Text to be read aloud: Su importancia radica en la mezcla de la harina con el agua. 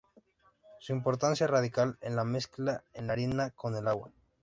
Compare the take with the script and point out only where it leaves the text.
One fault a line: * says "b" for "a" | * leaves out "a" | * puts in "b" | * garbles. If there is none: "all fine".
all fine